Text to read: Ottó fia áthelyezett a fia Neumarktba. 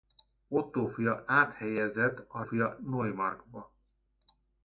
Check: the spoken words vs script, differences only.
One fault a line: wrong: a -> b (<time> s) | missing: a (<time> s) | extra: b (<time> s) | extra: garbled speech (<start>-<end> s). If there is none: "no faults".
no faults